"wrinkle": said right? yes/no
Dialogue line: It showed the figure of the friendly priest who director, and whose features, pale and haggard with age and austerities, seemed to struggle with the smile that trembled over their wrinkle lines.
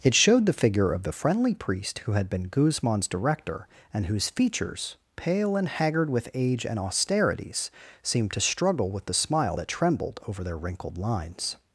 no